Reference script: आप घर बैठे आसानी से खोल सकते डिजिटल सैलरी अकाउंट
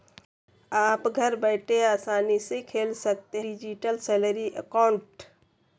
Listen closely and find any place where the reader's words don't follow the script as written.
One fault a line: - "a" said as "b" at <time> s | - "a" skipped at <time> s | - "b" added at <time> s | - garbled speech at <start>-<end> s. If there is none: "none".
none